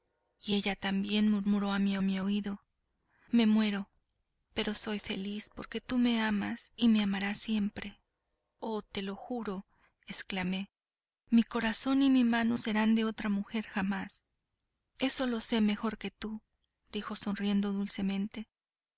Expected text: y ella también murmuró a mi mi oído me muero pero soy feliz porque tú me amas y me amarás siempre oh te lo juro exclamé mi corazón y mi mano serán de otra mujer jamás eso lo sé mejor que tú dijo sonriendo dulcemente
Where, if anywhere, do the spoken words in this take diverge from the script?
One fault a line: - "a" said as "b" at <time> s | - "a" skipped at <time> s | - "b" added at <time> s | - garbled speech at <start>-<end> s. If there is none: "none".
none